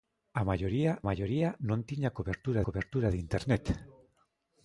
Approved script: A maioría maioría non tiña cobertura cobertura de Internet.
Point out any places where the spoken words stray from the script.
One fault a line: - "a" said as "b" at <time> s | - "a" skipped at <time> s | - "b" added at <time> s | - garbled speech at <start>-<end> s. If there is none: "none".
none